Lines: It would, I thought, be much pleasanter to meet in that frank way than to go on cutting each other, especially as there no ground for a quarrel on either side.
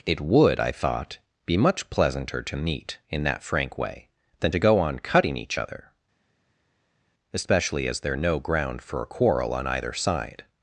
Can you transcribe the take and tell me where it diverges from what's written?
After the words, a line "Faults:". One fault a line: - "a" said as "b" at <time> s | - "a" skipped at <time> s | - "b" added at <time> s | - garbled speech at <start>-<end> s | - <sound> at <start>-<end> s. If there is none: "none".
It would, I thought, be much pleasanter to meet in that frank way than to go on cutting each other, especially as there no ground for a quarrel on either side.
Faults:
none